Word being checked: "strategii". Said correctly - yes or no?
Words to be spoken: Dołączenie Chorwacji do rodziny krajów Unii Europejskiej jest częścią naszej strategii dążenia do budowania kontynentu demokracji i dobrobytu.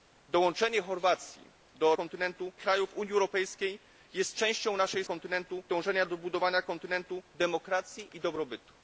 no